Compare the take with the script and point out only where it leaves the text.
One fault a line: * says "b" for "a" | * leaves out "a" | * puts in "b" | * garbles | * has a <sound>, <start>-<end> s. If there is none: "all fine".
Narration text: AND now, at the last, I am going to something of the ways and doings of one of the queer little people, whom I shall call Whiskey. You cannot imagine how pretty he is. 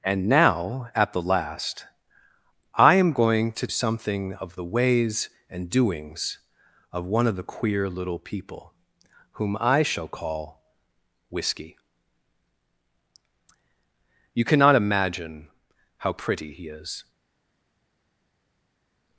all fine